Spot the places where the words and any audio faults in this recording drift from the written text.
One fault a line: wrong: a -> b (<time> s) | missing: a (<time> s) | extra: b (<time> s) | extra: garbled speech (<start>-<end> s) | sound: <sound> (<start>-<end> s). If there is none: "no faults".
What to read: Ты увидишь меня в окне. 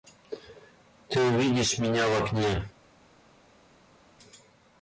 no faults